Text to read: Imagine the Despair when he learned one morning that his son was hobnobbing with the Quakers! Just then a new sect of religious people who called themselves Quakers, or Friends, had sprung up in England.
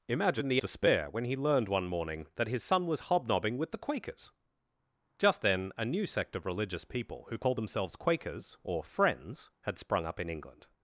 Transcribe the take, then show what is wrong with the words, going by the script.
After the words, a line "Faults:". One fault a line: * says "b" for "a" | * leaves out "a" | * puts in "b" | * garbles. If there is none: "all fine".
Imagine the Despair when he learned one morning that his son was hobnobbing with the Quakers! Just then a new sect of religious people who called themselves Quakers, or Friends, had sprung up in England.
Faults:
all fine